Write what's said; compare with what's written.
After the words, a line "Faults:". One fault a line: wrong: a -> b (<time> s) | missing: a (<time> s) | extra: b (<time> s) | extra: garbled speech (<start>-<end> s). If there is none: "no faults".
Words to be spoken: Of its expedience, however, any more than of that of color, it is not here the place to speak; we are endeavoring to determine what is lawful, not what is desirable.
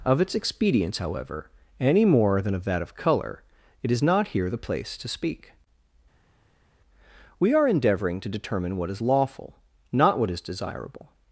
Of its expedience, however, any more than of that of color, it is not here the place to speak; we are endeavoring to determine what is lawful, not what is desirable.
Faults:
no faults